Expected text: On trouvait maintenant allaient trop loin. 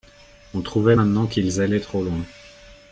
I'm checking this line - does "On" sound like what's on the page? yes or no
yes